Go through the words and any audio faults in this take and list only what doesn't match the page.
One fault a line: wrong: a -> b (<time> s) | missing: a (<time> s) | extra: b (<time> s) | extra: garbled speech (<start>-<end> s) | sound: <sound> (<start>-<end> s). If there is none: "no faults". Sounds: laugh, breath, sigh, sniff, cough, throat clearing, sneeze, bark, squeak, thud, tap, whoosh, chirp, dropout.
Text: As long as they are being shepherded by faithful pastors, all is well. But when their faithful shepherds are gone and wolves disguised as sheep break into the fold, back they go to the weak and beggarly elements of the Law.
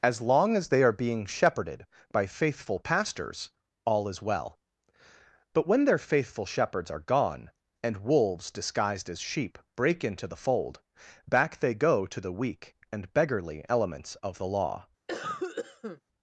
sound: cough (15.1-16.0 s)